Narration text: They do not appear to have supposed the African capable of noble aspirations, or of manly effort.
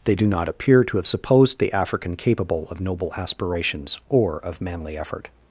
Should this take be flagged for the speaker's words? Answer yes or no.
no